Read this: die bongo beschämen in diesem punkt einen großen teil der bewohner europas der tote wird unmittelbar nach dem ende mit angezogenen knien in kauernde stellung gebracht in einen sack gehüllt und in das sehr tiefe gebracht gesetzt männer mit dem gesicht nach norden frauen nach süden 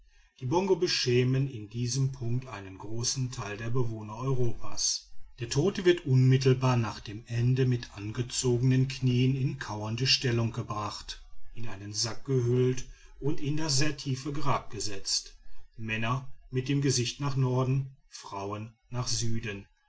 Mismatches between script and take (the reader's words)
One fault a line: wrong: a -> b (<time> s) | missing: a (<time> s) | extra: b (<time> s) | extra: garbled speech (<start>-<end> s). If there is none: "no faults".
wrong: gebracht -> grab (14.3 s)